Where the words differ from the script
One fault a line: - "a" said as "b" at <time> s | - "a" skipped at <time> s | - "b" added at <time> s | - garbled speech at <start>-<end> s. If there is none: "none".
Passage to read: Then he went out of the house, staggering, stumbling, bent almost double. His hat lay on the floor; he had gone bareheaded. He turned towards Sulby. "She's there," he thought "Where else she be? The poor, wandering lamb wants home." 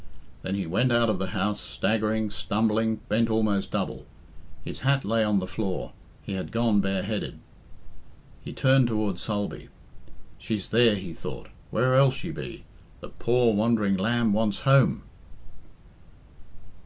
none